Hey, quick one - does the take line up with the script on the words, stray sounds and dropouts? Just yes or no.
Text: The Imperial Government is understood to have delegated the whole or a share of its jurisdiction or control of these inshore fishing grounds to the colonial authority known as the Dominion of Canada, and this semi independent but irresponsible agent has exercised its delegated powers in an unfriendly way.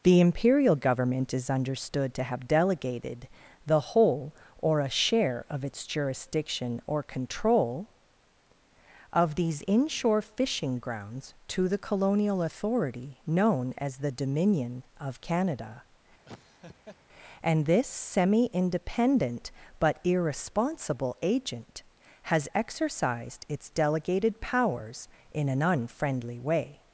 no